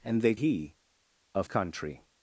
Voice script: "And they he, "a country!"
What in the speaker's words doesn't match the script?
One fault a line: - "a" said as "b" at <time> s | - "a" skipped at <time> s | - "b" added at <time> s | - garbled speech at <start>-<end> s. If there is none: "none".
none